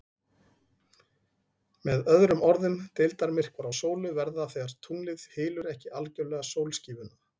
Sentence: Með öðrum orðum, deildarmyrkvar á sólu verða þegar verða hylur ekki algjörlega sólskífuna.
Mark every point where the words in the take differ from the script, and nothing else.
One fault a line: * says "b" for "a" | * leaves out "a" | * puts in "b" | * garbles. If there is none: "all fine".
* says "tunglið" for "verða"